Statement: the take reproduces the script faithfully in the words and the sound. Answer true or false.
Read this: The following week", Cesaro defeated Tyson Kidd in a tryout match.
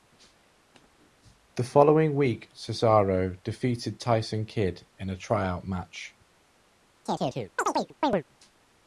false